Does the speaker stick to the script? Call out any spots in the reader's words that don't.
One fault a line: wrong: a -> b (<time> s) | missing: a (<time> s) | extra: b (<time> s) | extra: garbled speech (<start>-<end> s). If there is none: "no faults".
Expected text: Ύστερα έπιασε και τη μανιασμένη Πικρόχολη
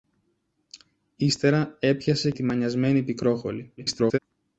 missing: και (2.3 s)
extra: garbled speech (3.8-4.2 s)